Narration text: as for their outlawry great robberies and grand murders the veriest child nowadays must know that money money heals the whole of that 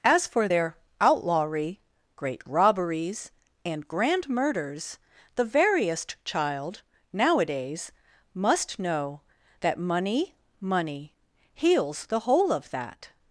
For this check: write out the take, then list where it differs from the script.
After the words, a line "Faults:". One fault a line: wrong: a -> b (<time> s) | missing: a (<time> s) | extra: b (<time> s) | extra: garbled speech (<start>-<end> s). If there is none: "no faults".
as for their outlawry great robberies and grand murders the veriest child nowadays must know that money money heals the whole of that
Faults:
no faults